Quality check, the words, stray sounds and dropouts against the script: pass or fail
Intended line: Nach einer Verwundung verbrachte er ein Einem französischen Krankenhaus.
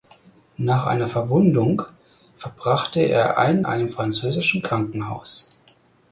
pass